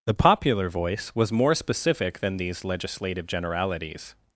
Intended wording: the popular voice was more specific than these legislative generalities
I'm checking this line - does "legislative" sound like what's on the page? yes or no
yes